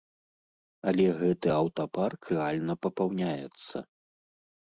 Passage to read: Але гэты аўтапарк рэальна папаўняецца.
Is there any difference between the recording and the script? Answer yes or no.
no